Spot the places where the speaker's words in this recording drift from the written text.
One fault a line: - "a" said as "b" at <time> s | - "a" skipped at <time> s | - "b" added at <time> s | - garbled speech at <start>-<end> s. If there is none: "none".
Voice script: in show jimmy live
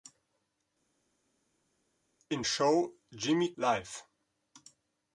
none